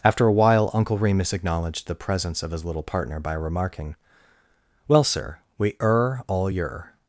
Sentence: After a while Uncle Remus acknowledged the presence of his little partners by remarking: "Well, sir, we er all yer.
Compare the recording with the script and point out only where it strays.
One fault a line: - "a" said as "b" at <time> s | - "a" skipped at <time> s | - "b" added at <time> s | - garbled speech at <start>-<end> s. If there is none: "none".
- "partners" said as "partner" at 2.8 s